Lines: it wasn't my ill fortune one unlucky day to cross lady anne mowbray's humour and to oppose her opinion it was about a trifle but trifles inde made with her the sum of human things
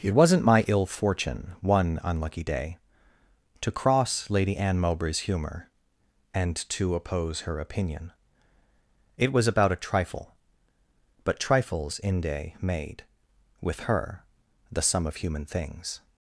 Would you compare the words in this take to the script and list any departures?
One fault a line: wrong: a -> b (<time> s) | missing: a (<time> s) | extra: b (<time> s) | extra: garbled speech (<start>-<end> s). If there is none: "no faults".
no faults